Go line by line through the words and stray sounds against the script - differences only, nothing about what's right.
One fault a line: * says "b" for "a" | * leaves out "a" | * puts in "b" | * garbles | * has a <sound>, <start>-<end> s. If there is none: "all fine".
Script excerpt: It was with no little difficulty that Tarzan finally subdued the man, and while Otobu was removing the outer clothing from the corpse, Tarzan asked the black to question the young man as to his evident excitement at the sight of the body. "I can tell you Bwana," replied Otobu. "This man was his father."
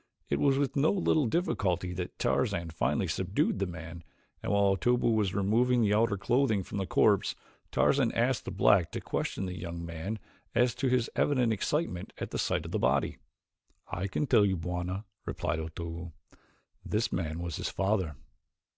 all fine